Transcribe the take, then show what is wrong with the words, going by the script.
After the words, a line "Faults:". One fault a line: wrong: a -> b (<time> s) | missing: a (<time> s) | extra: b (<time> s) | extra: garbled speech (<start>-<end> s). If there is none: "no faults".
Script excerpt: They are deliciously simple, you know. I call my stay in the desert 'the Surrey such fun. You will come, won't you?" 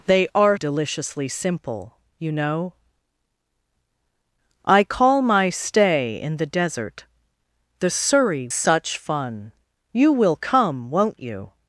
They are deliciously simple, you know. I call my stay in the desert 'the Surrey such fun. You will come, won't you?"
Faults:
no faults